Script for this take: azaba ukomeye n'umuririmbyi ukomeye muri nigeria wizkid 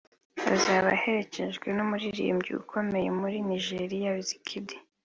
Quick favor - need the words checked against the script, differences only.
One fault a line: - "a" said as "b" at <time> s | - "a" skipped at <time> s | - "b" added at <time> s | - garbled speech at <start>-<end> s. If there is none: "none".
- "ukomeye" said as "aherekejwe" at 1.0 s